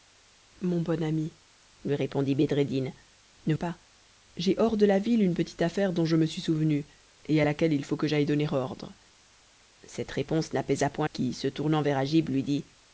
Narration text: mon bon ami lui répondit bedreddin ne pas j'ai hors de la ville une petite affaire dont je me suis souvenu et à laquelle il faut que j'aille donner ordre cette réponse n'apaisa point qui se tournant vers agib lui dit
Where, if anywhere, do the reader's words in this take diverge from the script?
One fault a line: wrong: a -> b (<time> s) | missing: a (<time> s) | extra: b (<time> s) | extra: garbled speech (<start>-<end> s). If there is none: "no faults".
no faults